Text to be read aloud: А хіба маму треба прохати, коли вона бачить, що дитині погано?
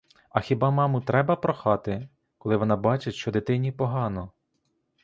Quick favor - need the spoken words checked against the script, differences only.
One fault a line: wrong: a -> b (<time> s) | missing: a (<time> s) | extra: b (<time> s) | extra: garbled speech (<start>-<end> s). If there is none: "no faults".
no faults